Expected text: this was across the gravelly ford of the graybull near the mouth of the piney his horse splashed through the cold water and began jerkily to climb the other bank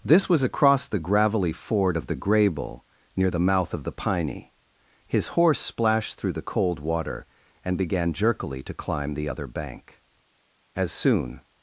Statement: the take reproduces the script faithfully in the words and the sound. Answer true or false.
false